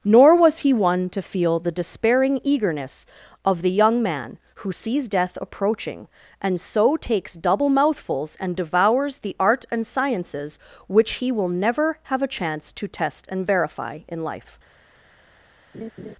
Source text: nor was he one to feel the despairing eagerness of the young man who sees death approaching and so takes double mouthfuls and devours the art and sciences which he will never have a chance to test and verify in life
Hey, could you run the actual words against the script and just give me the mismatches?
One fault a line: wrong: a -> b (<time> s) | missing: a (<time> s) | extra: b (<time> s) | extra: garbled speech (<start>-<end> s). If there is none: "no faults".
no faults